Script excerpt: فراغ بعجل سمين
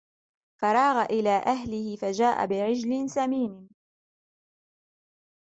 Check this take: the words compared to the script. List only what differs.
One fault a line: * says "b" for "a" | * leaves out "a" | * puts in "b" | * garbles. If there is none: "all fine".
* puts in "إلى أهله فجاء"